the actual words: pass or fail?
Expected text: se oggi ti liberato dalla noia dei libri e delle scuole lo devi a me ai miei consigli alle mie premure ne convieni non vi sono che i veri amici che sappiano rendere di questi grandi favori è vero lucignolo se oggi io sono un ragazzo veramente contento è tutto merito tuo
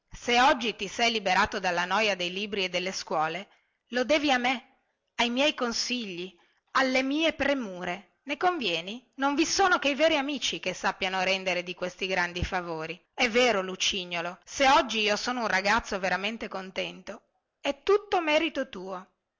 fail